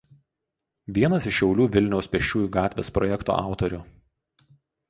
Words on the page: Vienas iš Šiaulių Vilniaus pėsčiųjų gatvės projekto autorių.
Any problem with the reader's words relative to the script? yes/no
no